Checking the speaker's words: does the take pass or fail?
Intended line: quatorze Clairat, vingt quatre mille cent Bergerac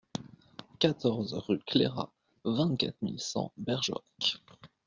fail